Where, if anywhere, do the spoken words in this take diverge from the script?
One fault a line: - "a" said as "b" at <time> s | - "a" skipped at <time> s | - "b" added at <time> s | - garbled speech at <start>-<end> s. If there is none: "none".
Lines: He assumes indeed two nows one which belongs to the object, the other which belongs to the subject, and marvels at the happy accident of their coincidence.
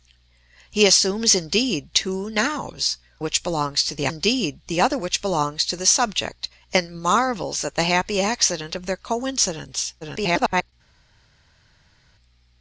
- "one" skipped at 3.0 s
- "object" said as "indeed" at 4.1 s
- garbled speech at 10.0-10.7 s